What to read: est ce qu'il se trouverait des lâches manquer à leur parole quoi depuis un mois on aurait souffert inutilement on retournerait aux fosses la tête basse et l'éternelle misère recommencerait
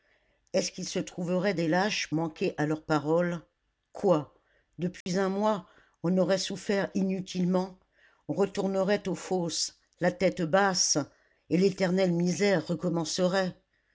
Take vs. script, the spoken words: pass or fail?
pass